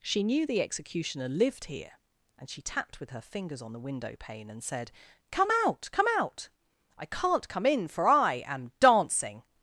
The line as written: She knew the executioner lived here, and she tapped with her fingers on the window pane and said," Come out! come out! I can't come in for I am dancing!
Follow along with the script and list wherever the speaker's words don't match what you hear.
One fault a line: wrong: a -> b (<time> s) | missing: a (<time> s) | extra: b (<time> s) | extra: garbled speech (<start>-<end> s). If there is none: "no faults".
no faults